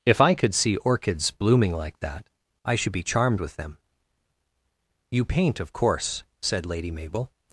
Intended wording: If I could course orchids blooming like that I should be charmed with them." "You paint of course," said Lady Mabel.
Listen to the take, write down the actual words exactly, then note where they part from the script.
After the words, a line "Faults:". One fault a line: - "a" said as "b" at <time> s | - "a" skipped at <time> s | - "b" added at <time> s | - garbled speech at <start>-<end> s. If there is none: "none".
If I could see orchids blooming like that I should be charmed with them." "You paint of course," said Lady Mabel.
Faults:
- "course" said as "see" at 0.6 s